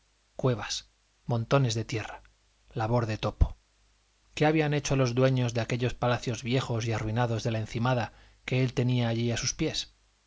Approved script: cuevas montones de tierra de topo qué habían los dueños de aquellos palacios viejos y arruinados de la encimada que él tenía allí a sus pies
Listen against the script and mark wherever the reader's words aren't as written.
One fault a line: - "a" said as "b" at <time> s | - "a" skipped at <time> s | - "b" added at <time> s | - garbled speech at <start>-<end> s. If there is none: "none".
- "labor" added at 2.7 s
- "hecho" added at 4.7 s